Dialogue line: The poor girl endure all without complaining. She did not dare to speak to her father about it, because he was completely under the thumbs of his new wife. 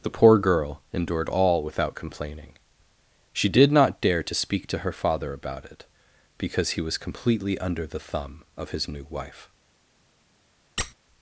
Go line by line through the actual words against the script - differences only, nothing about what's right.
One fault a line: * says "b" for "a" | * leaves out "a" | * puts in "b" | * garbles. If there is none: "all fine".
* says "endured" for "endure"
* says "thumb" for "thumbs"